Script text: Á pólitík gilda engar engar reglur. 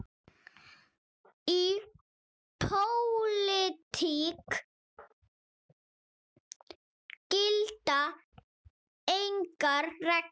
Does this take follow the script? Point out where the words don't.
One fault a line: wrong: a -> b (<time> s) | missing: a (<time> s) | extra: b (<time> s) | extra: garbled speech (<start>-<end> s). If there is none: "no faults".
wrong: Á -> Í (1.5 s)
missing: engar (9.8 s)